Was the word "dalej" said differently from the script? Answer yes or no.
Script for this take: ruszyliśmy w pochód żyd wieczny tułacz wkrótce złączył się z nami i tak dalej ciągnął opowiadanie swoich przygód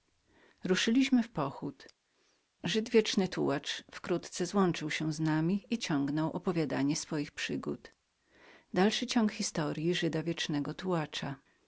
yes